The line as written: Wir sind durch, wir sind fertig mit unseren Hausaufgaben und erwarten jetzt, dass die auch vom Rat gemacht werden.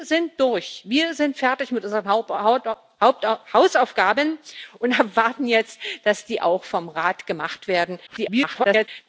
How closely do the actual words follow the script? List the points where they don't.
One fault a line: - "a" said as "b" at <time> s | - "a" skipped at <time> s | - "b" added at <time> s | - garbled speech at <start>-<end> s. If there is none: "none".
- garbled speech at 8.1-8.9 s